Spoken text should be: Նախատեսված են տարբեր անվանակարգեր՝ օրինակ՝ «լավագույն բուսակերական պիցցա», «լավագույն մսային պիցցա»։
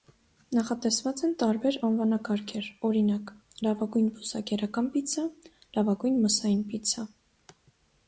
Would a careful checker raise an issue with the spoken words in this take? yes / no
no